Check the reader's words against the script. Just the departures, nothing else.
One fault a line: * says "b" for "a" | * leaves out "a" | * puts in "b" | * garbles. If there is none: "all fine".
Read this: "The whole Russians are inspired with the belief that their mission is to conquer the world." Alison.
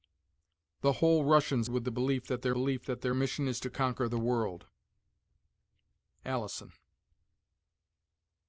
* says "with the belief that their" for "are inspired with the"